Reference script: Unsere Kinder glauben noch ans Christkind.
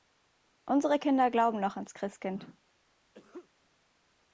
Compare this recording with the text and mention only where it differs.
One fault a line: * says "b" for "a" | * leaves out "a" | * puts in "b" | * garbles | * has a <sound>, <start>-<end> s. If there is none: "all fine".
* has a sneeze, 3.1-3.5 s